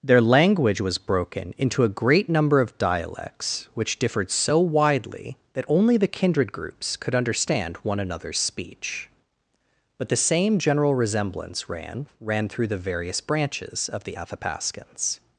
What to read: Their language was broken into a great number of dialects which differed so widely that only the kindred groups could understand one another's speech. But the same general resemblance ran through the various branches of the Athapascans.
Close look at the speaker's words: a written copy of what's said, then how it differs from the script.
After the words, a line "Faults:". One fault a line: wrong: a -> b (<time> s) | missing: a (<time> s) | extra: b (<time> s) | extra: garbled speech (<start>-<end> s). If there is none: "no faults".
Their language was broken into a great number of dialects which differed so widely that only the kindred groups could understand one another's speech. But the same general resemblance ran ran through the various branches of the Athapascans.
Faults:
extra: ran (12.2 s)